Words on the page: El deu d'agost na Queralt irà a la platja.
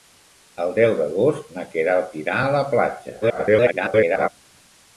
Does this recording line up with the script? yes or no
no